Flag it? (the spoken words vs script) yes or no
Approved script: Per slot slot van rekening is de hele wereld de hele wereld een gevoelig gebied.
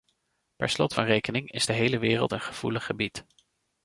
yes